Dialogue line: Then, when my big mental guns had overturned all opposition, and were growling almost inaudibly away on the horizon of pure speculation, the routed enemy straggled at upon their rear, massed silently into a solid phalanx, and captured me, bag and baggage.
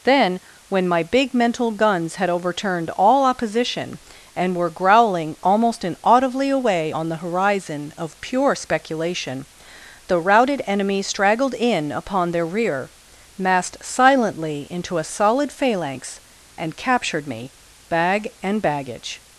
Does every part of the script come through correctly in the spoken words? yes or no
no